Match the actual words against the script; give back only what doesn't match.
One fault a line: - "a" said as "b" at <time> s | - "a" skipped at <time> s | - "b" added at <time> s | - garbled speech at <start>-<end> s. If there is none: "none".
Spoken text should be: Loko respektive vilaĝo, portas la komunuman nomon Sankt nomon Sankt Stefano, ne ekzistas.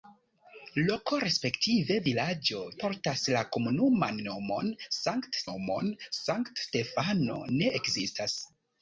none